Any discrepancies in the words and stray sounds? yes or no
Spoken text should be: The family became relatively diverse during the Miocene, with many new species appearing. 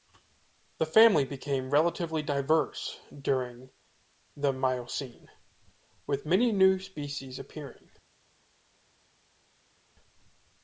no